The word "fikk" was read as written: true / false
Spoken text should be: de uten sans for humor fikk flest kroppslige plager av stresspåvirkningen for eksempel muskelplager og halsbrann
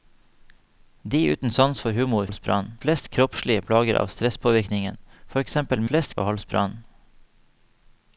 false